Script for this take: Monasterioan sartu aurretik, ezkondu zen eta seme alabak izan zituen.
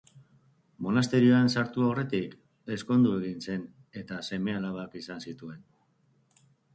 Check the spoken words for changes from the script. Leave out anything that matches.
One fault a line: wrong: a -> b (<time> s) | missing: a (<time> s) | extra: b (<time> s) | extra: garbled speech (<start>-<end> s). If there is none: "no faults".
extra: egin (3.2 s)